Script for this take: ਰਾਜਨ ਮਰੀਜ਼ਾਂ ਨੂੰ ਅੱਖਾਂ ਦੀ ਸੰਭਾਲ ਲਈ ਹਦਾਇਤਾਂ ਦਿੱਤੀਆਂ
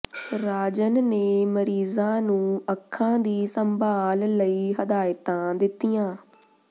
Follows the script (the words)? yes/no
no